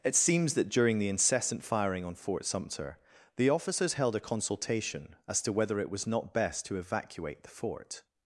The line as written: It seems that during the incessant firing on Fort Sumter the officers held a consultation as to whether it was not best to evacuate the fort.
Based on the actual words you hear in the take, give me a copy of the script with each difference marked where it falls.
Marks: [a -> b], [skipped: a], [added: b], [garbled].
It seems that during the incessant firing on Fort Sumter the officers held a consultation as to whether it was not best to evacuate the fort.